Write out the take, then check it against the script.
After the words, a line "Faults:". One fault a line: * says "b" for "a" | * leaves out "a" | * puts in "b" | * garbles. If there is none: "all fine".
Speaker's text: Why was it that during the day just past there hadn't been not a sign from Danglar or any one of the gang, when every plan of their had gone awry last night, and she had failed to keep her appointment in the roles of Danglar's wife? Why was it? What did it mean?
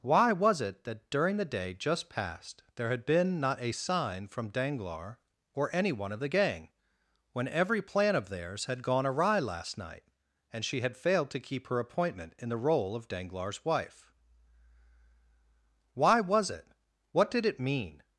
Why was it that during the day just past there had been not a sign from Danglar or any one of the gang, when every plan of theirs had gone awry last night, and she had failed to keep her appointment in the role of Danglar's wife? Why was it? What did it mean?
Faults:
* says "had" for "hadn't"
* says "theirs" for "their"
* says "role" for "roles"